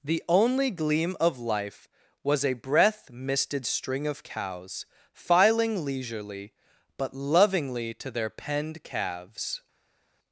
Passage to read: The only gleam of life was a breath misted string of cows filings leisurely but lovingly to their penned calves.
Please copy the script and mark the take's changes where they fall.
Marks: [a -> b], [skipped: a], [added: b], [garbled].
The only gleam of life was a breath misted string of cows [filings -> filing] leisurely but lovingly to their penned calves.